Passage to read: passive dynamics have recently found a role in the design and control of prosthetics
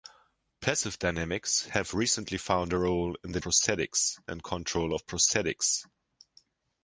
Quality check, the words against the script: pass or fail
fail